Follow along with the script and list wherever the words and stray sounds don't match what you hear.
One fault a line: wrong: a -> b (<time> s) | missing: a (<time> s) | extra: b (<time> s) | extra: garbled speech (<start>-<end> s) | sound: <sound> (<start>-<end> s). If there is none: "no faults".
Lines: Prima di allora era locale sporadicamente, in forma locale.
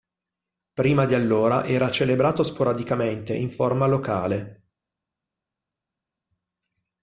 wrong: locale -> celebrato (1.9 s)